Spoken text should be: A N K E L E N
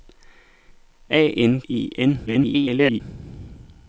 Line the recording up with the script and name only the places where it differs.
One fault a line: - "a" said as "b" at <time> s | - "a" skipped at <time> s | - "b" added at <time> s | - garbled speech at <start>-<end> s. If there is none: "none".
- "K E L" skipped at 1.6 s
- garbled speech at 2.3-3.0 s